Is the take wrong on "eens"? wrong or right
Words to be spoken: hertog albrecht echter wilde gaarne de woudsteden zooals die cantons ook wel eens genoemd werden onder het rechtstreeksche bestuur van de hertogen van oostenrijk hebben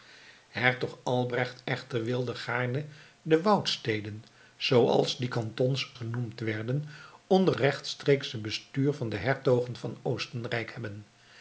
wrong